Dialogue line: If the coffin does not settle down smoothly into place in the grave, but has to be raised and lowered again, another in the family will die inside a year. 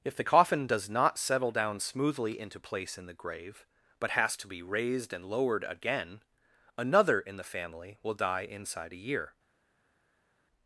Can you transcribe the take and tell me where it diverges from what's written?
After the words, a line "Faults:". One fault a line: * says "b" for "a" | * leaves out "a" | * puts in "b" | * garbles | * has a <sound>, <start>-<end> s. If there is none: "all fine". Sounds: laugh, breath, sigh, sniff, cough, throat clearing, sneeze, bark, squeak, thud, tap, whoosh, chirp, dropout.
If the coffin does not settle down smoothly into place in the grave, but has to be raised and lowered again, another in the family will die inside a year.
Faults:
all fine